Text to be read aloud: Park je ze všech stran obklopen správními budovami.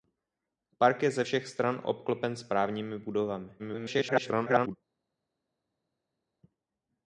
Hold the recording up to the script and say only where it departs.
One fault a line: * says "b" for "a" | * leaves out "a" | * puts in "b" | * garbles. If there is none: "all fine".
* garbles